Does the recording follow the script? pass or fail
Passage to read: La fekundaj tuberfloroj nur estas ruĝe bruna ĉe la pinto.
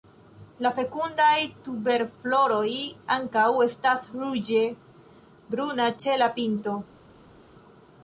fail